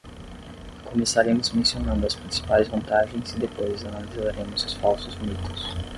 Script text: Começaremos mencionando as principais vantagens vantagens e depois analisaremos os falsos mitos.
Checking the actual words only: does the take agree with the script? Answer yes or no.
no